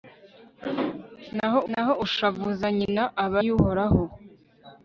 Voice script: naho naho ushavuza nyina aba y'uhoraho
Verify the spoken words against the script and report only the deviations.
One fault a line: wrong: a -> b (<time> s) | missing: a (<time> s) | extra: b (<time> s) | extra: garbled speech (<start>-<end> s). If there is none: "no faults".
no faults